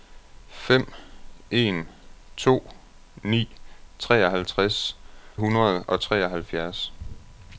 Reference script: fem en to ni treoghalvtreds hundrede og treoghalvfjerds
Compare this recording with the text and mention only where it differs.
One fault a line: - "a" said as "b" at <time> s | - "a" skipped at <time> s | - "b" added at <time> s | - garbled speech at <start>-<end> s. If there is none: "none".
none